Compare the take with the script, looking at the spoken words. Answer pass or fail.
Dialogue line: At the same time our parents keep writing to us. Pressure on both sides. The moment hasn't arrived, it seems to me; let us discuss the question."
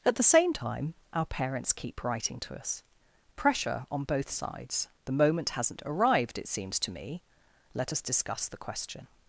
pass